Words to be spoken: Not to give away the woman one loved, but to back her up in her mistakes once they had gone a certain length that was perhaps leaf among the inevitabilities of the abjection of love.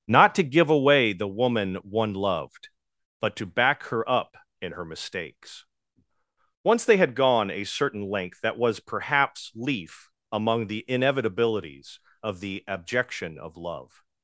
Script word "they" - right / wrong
right